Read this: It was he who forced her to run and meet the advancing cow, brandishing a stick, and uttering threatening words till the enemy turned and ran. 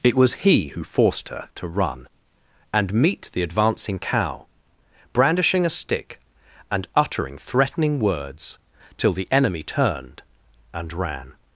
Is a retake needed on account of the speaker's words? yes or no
no